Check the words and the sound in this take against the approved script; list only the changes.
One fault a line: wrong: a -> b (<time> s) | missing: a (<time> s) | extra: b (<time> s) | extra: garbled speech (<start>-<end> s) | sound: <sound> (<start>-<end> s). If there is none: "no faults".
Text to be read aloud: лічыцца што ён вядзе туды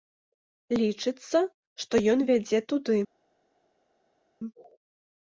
no faults